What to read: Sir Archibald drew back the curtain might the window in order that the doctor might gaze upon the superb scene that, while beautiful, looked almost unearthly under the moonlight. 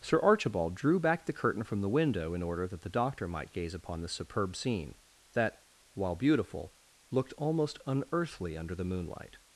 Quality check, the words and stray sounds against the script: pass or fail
fail